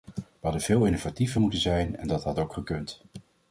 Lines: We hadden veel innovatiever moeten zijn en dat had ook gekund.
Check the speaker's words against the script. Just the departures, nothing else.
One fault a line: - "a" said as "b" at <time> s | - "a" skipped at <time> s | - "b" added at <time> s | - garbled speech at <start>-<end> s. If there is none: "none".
none